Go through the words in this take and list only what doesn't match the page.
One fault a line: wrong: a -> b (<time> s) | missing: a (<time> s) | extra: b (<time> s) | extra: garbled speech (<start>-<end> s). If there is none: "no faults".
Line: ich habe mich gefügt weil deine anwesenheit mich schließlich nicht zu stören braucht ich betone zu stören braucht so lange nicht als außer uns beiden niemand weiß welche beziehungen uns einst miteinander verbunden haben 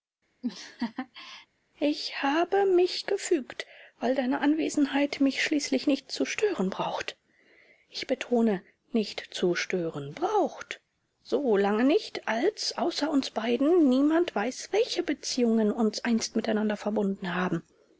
extra: nicht (8.9 s)